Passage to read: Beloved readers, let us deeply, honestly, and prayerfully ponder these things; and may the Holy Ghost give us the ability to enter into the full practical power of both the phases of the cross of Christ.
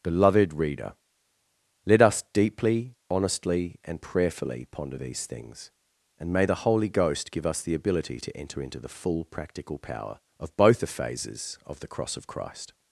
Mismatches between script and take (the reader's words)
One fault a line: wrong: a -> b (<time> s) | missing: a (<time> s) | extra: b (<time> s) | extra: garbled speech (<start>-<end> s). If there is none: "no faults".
wrong: readers -> reader (0.5 s)